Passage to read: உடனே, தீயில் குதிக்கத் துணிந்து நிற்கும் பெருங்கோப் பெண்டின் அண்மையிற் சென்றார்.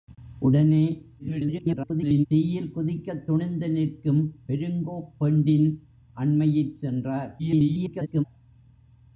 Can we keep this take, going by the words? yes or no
no